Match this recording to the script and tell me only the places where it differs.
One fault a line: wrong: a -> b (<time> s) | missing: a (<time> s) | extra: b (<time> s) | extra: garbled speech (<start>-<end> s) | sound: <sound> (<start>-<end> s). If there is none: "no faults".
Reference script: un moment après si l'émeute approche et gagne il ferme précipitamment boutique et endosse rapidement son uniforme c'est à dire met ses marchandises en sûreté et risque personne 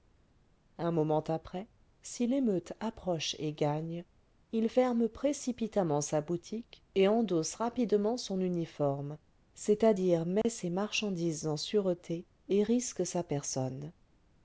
extra: sa (6.0 s)
sound: dropout (10.4-10.4 s)
extra: sa (13.1 s)